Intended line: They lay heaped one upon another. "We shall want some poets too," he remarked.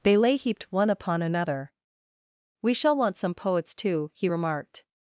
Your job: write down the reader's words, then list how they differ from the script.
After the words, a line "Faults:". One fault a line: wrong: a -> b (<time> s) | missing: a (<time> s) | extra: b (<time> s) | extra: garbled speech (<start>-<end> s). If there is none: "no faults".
They lay heaped one upon another. "We shall want some poets too," he remarked.
Faults:
no faults